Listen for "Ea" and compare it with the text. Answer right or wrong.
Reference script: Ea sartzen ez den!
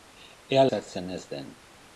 right